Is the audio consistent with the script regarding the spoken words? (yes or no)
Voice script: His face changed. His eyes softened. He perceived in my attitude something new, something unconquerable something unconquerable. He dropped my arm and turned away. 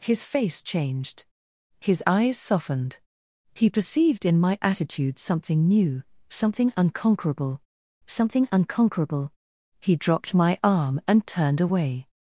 yes